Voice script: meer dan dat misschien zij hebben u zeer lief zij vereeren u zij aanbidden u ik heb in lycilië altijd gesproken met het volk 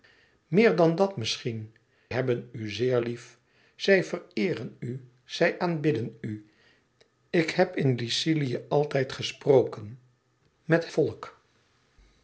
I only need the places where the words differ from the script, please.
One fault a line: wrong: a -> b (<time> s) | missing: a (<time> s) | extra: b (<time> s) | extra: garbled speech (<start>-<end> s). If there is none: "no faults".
missing: zij (1.8 s)
missing: het (10.9 s)